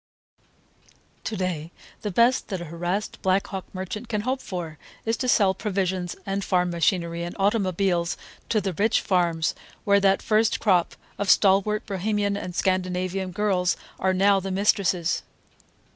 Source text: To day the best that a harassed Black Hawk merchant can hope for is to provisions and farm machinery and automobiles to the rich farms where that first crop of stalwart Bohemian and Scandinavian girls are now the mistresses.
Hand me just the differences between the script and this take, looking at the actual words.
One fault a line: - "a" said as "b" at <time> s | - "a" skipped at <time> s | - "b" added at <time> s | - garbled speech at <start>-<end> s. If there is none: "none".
- "sell" added at 5.3 s